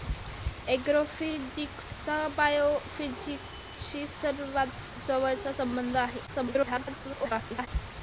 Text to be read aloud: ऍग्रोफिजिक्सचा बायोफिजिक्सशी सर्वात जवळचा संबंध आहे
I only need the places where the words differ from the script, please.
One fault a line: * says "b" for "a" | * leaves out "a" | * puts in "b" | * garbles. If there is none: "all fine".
* garbles